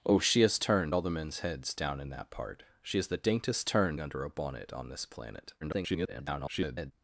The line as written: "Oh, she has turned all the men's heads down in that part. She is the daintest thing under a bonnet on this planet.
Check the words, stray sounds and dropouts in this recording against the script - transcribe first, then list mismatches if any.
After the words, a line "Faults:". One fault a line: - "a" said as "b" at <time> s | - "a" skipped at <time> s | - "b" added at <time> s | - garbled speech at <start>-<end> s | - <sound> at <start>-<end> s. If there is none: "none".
"Oh, she has turned all the men's heads down in that part. She is the daintest turned under a bonnet on this planet. [garbled]
Faults:
- "thing" said as "turned" at 3.6 s
- garbled speech at 5.6-6.9 s